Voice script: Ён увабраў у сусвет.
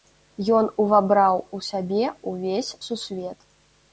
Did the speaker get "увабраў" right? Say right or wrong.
right